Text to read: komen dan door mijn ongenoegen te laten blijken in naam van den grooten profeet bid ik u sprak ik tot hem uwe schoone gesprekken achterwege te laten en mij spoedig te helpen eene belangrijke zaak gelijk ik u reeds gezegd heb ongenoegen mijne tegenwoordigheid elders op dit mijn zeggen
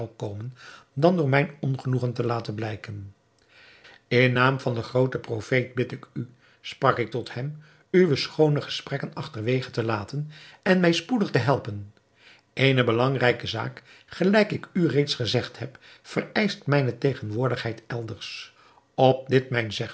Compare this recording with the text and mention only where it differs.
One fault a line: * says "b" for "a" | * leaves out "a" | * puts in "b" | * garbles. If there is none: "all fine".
* says "vereischt" for "ongenoegen"